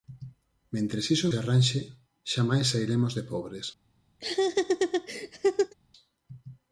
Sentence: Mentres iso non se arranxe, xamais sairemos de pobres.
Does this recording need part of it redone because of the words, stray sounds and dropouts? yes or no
yes